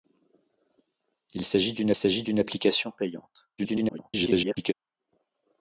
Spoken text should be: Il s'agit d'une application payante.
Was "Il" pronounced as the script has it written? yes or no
yes